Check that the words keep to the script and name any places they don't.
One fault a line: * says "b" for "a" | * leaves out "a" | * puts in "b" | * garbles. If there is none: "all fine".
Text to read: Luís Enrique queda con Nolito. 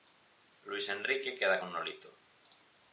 all fine